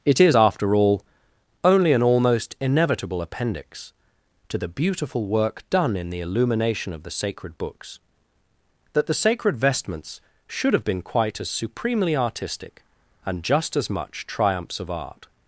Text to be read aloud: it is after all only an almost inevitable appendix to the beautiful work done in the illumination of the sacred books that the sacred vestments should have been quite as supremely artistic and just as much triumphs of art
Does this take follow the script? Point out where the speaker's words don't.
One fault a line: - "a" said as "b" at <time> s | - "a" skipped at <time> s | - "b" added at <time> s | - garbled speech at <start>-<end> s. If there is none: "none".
none